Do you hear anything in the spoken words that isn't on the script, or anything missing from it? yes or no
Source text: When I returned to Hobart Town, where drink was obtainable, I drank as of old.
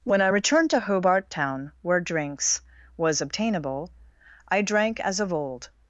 yes